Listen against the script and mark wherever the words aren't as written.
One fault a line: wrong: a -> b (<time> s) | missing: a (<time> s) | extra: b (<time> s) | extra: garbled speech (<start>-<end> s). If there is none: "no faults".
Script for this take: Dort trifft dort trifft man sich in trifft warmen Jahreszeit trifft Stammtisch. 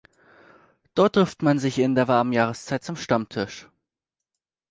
missing: dort trifft (1.4 s)
wrong: trifft -> der (1.9 s)
wrong: trifft -> zum (2.8 s)